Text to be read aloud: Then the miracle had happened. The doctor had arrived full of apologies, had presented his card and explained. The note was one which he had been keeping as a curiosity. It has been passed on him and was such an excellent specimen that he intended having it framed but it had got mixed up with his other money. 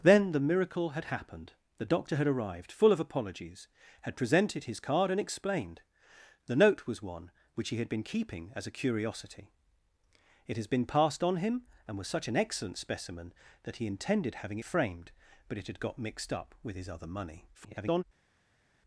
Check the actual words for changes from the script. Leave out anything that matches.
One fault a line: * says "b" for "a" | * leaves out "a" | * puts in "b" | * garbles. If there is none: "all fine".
* leaves out "it"
* garbles